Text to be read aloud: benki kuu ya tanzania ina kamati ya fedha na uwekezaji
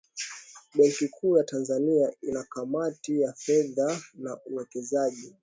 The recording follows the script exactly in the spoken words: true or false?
true